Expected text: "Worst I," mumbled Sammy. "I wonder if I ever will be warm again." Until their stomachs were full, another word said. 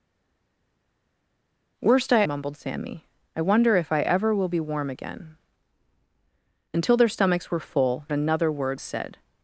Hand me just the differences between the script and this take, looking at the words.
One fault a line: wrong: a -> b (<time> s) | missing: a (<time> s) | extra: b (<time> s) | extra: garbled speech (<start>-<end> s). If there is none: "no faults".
no faults